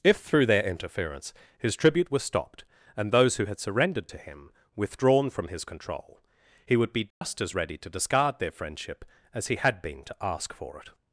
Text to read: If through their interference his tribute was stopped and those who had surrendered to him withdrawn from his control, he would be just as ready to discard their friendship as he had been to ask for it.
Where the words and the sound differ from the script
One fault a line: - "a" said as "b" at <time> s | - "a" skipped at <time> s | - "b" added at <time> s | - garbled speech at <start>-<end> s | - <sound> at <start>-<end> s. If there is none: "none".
- dropout at 7.1-7.2 s